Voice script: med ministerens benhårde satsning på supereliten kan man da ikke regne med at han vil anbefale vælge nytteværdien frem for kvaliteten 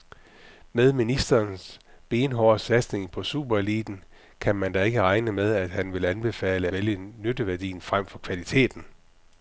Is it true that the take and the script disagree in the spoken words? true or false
false